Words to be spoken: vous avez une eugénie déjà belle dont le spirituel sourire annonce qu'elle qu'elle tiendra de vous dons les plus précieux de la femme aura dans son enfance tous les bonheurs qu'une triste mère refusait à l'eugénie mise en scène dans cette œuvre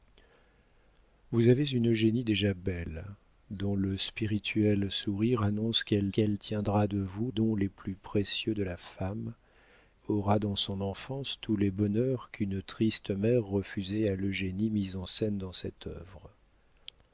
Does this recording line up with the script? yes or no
yes